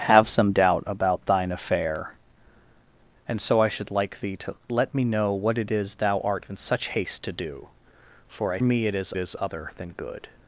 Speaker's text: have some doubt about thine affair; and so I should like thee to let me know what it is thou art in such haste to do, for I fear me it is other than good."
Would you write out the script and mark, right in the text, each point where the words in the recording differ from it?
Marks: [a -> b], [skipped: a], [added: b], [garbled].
have some doubt about thine affair; and so I should like thee to let me know what it is thou art in such haste to do, for I [skipped: fear] me it is [added: is] other than good."